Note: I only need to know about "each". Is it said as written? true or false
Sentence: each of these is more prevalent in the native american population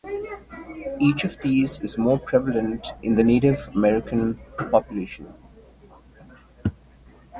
true